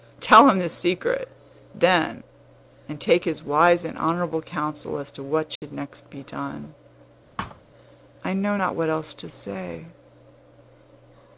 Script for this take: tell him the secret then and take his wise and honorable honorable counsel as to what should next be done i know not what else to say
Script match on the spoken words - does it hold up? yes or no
no